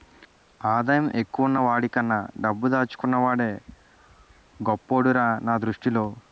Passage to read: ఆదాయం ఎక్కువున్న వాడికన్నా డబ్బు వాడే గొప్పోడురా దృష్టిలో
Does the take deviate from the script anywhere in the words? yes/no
yes